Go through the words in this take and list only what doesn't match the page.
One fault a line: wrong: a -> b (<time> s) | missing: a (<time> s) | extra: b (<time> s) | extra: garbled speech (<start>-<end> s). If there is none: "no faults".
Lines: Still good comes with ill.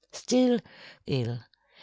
missing: good comes with (0.6 s)